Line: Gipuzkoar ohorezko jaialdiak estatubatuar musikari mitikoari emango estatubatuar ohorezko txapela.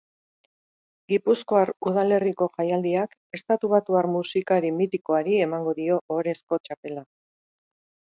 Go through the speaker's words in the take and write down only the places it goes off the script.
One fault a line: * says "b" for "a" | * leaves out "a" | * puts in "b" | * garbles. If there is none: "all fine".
* says "udalerriko" for "ohorezko"
* says "dio" for "estatubatuar"